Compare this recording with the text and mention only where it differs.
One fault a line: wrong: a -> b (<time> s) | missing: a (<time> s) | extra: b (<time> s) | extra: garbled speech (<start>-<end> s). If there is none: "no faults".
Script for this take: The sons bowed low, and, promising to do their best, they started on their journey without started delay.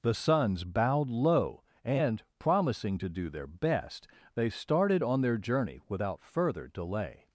wrong: started -> further (6.2 s)